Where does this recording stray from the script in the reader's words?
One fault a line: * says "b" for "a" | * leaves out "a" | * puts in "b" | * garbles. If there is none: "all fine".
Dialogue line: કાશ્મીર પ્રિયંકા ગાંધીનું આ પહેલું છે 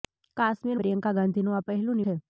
all fine